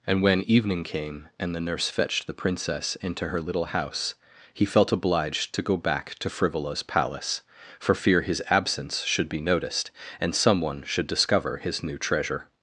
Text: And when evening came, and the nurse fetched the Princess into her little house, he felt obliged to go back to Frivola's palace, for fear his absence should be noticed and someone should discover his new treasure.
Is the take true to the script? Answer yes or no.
yes